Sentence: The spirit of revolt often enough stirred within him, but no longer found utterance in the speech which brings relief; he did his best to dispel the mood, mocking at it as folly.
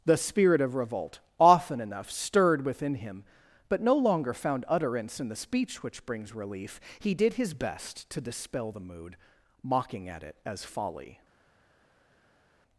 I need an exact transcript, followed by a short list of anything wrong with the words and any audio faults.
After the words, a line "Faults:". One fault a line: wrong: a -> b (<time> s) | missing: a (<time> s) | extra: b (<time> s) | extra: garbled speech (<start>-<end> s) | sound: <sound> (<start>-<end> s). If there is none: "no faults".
The spirit of revolt often enough stirred within him, but no longer found utterance in the speech which brings relief; he did his best to dispel the mood, mocking at it as folly.
Faults:
no faults